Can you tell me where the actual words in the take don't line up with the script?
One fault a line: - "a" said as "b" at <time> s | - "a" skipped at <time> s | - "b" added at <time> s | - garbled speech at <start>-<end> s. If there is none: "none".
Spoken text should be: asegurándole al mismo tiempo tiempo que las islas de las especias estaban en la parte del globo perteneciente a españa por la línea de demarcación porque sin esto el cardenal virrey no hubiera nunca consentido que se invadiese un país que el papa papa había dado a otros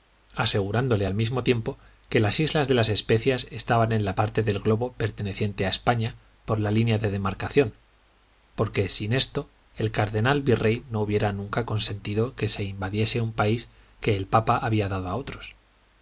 - "tiempo" skipped at 1.8 s
- "papa" skipped at 14.6 s